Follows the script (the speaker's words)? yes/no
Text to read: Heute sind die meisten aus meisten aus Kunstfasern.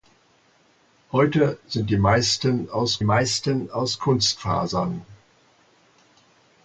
yes